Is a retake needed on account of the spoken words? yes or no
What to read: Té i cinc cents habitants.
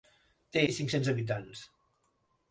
no